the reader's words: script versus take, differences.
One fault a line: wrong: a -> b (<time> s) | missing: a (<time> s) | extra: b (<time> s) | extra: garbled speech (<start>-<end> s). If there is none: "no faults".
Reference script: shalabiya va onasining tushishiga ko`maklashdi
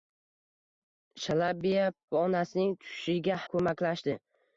no faults